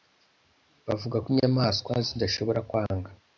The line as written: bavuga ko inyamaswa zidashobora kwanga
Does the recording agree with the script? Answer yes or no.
yes